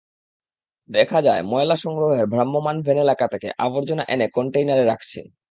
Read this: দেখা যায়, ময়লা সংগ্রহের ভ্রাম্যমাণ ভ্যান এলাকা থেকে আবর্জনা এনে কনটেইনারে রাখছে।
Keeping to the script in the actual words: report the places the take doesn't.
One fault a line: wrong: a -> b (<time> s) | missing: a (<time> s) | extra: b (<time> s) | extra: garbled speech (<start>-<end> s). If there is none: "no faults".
no faults